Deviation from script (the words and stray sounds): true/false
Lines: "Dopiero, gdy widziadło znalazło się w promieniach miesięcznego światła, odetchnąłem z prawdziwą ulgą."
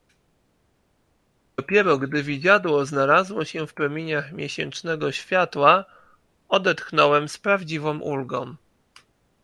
false